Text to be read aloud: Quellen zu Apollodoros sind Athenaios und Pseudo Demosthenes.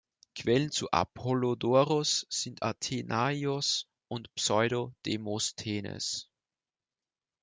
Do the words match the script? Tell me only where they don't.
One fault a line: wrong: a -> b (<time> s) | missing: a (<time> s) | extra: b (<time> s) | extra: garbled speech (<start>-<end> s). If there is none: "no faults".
no faults